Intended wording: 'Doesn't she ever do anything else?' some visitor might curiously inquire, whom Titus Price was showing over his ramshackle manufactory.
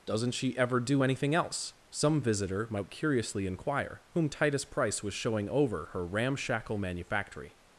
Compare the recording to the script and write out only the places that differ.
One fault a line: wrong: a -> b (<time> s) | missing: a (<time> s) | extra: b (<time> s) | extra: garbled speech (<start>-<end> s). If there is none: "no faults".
wrong: his -> her (5.9 s)